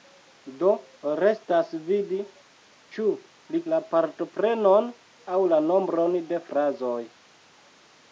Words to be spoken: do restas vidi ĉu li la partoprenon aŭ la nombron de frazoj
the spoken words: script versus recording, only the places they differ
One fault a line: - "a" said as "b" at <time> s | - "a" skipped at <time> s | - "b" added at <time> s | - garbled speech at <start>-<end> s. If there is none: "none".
none